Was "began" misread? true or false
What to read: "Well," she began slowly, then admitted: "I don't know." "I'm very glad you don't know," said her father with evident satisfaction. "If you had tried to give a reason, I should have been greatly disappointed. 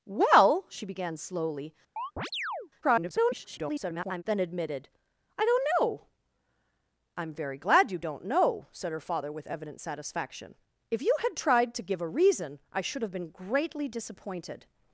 false